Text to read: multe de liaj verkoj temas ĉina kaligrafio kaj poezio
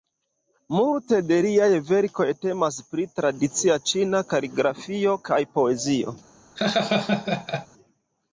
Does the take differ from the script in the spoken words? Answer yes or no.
yes